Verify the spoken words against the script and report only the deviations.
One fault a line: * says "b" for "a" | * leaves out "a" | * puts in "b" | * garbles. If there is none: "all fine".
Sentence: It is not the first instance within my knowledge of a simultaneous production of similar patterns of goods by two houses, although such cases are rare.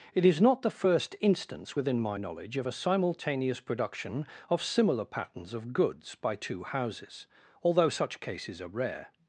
all fine